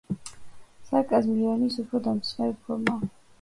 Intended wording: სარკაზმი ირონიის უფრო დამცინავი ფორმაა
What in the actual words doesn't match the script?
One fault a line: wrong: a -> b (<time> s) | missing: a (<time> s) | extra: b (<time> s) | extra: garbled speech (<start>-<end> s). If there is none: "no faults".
no faults